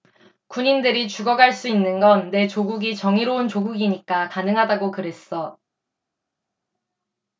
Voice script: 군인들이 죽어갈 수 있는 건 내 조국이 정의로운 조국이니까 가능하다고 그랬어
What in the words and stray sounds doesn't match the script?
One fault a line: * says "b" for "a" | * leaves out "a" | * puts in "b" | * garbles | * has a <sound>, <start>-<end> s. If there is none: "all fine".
all fine